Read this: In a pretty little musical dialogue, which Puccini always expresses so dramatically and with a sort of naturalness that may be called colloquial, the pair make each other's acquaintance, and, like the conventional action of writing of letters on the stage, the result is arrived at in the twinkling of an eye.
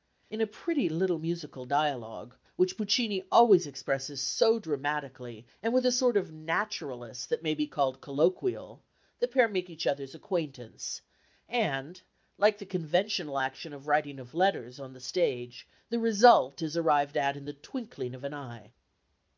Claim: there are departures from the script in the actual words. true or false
false